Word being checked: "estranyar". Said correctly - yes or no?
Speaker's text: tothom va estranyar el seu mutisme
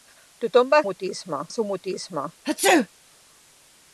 no